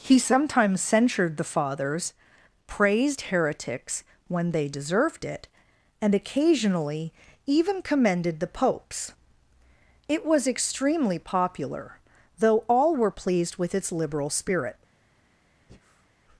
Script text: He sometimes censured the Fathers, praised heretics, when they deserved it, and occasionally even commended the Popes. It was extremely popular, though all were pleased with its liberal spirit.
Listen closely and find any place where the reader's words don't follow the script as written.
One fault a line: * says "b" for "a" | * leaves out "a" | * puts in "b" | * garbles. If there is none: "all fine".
all fine